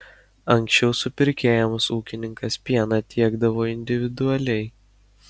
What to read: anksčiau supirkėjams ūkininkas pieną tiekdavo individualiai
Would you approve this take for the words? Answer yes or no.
yes